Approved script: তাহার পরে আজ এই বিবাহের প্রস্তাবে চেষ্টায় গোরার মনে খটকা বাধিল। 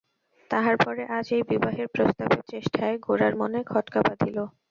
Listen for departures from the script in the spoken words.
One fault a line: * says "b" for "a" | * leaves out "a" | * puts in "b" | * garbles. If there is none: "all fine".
all fine